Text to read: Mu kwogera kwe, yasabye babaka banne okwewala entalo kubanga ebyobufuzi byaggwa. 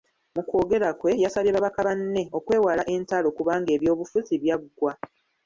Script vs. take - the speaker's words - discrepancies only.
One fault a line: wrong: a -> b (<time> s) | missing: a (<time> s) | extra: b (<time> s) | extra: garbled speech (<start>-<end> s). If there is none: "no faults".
no faults